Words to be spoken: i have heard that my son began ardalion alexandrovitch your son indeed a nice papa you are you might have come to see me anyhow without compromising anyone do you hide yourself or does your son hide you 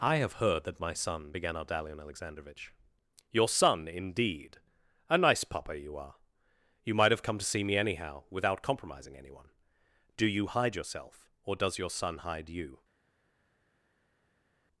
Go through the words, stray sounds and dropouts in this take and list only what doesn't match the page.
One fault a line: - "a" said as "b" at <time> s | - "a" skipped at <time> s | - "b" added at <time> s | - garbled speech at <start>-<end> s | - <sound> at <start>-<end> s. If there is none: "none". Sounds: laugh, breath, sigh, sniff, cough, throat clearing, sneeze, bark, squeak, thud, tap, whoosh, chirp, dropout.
none